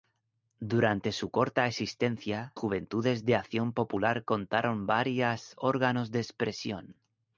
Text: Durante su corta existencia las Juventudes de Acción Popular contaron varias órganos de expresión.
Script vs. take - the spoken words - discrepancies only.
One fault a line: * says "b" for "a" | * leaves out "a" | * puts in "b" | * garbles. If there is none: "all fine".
* leaves out "las"